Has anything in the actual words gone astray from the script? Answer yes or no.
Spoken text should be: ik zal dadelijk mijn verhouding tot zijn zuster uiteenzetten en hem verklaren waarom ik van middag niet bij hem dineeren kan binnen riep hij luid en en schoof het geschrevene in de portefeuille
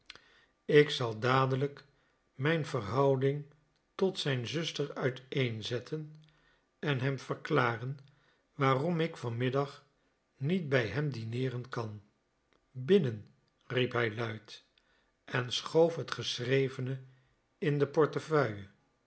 yes